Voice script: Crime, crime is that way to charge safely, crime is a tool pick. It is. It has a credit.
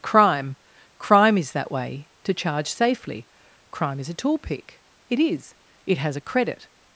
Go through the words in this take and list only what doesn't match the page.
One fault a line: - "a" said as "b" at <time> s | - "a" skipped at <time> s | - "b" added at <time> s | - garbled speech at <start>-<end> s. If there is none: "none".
none